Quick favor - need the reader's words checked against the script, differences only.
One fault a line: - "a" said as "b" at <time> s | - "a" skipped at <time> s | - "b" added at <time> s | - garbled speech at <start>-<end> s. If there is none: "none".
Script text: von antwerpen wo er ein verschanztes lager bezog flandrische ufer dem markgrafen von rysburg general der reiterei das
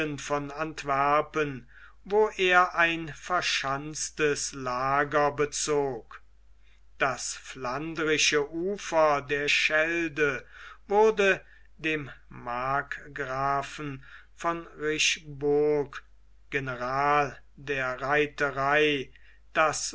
- "das" added at 7.0 s
- "der schelde wurde" added at 9.2 s